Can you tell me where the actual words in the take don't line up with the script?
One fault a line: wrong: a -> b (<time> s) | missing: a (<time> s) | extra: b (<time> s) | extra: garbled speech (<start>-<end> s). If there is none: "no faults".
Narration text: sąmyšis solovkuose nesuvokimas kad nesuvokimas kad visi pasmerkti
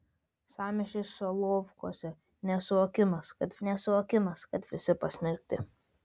no faults